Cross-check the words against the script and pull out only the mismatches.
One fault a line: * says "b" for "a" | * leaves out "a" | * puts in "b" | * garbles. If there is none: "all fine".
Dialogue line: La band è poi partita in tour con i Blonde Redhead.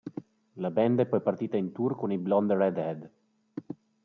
all fine